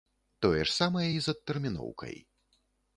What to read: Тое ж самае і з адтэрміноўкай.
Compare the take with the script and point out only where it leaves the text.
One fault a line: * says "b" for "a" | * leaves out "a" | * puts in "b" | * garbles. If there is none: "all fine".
all fine